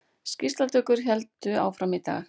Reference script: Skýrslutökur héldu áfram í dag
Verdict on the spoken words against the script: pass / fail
pass